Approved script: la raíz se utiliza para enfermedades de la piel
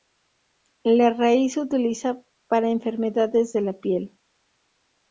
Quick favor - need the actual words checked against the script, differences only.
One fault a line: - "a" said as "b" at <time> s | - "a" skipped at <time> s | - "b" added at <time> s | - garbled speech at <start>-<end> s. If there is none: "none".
none